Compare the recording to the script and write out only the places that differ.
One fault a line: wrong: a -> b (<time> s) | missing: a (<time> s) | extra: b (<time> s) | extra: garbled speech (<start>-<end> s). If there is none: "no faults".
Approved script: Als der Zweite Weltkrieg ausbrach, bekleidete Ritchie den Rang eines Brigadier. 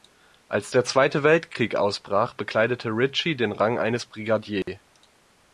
no faults